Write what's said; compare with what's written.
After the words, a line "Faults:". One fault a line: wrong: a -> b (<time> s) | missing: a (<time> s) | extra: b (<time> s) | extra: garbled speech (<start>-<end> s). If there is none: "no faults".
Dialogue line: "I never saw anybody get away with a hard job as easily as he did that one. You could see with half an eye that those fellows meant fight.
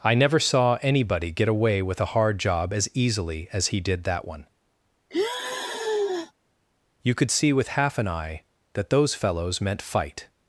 "I never saw anybody get away with a hard job as easily as he did that one. You could see with half an eye that those fellows meant fight.
Faults:
no faults